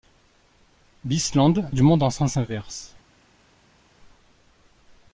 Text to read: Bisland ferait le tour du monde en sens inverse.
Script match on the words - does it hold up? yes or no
no